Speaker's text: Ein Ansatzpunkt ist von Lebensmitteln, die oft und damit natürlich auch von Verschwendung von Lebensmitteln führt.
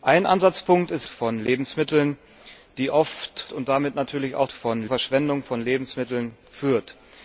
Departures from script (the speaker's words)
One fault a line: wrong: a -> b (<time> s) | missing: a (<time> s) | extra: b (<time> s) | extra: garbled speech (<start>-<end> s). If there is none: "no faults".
no faults